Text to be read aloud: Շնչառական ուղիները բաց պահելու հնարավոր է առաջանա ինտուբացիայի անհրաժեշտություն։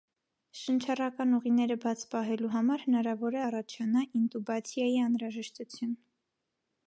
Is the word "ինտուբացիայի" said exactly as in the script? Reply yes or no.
yes